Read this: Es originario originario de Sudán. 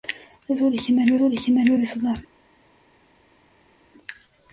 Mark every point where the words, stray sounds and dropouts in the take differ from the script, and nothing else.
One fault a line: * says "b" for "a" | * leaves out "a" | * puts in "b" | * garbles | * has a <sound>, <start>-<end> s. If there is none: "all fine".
all fine